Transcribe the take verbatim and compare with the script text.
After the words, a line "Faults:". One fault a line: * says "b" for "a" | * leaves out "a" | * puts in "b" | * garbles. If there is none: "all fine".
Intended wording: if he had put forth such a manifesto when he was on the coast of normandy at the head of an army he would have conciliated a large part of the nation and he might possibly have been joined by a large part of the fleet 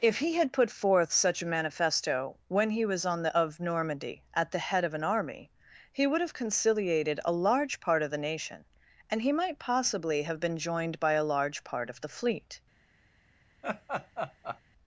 if he had put forth such a manifesto when he was on the of normandy at the head of an army he would have conciliated a large part of the nation and he might possibly have been joined by a large part of the fleet
Faults:
* leaves out "coast"